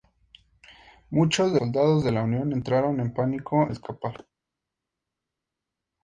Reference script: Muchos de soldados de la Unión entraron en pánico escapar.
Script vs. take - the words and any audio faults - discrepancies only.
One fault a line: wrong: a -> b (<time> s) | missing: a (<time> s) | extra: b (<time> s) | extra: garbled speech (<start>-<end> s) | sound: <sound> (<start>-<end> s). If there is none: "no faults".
no faults